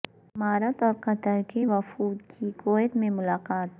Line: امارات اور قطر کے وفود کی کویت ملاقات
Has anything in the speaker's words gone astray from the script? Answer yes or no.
yes